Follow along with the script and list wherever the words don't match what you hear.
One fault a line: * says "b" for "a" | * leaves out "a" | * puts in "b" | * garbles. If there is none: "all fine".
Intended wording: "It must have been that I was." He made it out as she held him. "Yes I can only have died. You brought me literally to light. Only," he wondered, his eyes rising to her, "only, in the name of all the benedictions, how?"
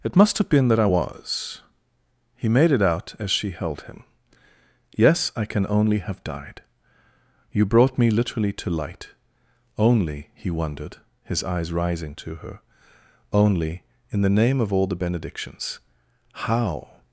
all fine